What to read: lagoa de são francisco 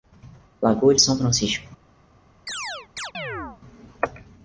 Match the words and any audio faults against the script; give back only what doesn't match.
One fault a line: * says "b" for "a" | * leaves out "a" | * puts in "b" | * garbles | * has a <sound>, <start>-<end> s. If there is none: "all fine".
* has a chirp, 2.5-3.6 s